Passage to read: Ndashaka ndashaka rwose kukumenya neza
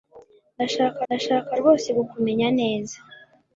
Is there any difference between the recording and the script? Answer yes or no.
no